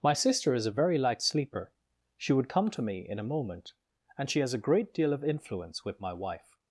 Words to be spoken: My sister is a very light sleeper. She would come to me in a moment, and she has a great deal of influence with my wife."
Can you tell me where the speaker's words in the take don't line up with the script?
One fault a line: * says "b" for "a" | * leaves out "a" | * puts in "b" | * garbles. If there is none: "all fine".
all fine